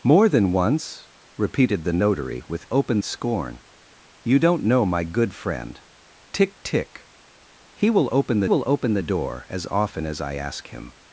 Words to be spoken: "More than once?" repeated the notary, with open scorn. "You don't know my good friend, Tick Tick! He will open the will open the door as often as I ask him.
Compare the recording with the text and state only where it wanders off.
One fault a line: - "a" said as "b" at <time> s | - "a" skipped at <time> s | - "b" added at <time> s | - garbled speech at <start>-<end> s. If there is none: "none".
none